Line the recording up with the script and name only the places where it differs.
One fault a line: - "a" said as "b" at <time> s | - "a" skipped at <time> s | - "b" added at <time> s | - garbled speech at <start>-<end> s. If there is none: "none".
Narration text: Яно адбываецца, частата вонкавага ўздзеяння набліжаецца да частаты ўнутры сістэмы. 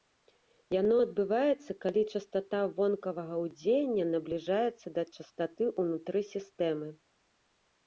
- "калі" added at 1.8 s